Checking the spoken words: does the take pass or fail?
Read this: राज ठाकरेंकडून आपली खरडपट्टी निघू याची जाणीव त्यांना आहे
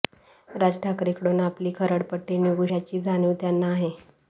pass